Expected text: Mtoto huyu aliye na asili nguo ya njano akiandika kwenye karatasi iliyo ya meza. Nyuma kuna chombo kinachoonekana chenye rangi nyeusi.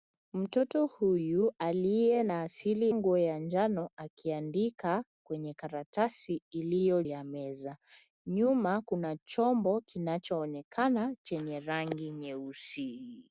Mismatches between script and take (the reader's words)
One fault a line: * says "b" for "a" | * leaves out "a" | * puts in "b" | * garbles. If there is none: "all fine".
all fine